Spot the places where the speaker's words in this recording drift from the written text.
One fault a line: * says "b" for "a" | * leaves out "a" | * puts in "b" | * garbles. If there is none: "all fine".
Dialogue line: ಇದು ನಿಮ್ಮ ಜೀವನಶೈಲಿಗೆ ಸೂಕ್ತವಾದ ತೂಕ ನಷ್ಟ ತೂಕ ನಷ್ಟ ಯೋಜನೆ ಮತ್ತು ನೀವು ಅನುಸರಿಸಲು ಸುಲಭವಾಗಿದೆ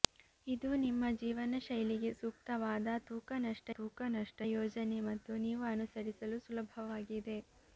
all fine